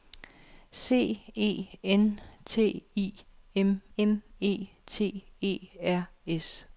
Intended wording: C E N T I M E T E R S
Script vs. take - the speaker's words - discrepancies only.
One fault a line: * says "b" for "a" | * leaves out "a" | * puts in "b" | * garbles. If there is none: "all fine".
* puts in "M"